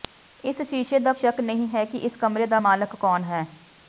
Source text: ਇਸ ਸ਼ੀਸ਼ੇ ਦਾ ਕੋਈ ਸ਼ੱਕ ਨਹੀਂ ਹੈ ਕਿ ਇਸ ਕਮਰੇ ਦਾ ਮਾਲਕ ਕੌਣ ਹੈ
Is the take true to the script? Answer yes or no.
no